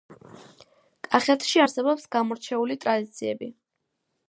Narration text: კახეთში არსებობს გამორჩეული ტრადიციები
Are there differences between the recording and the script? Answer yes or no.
no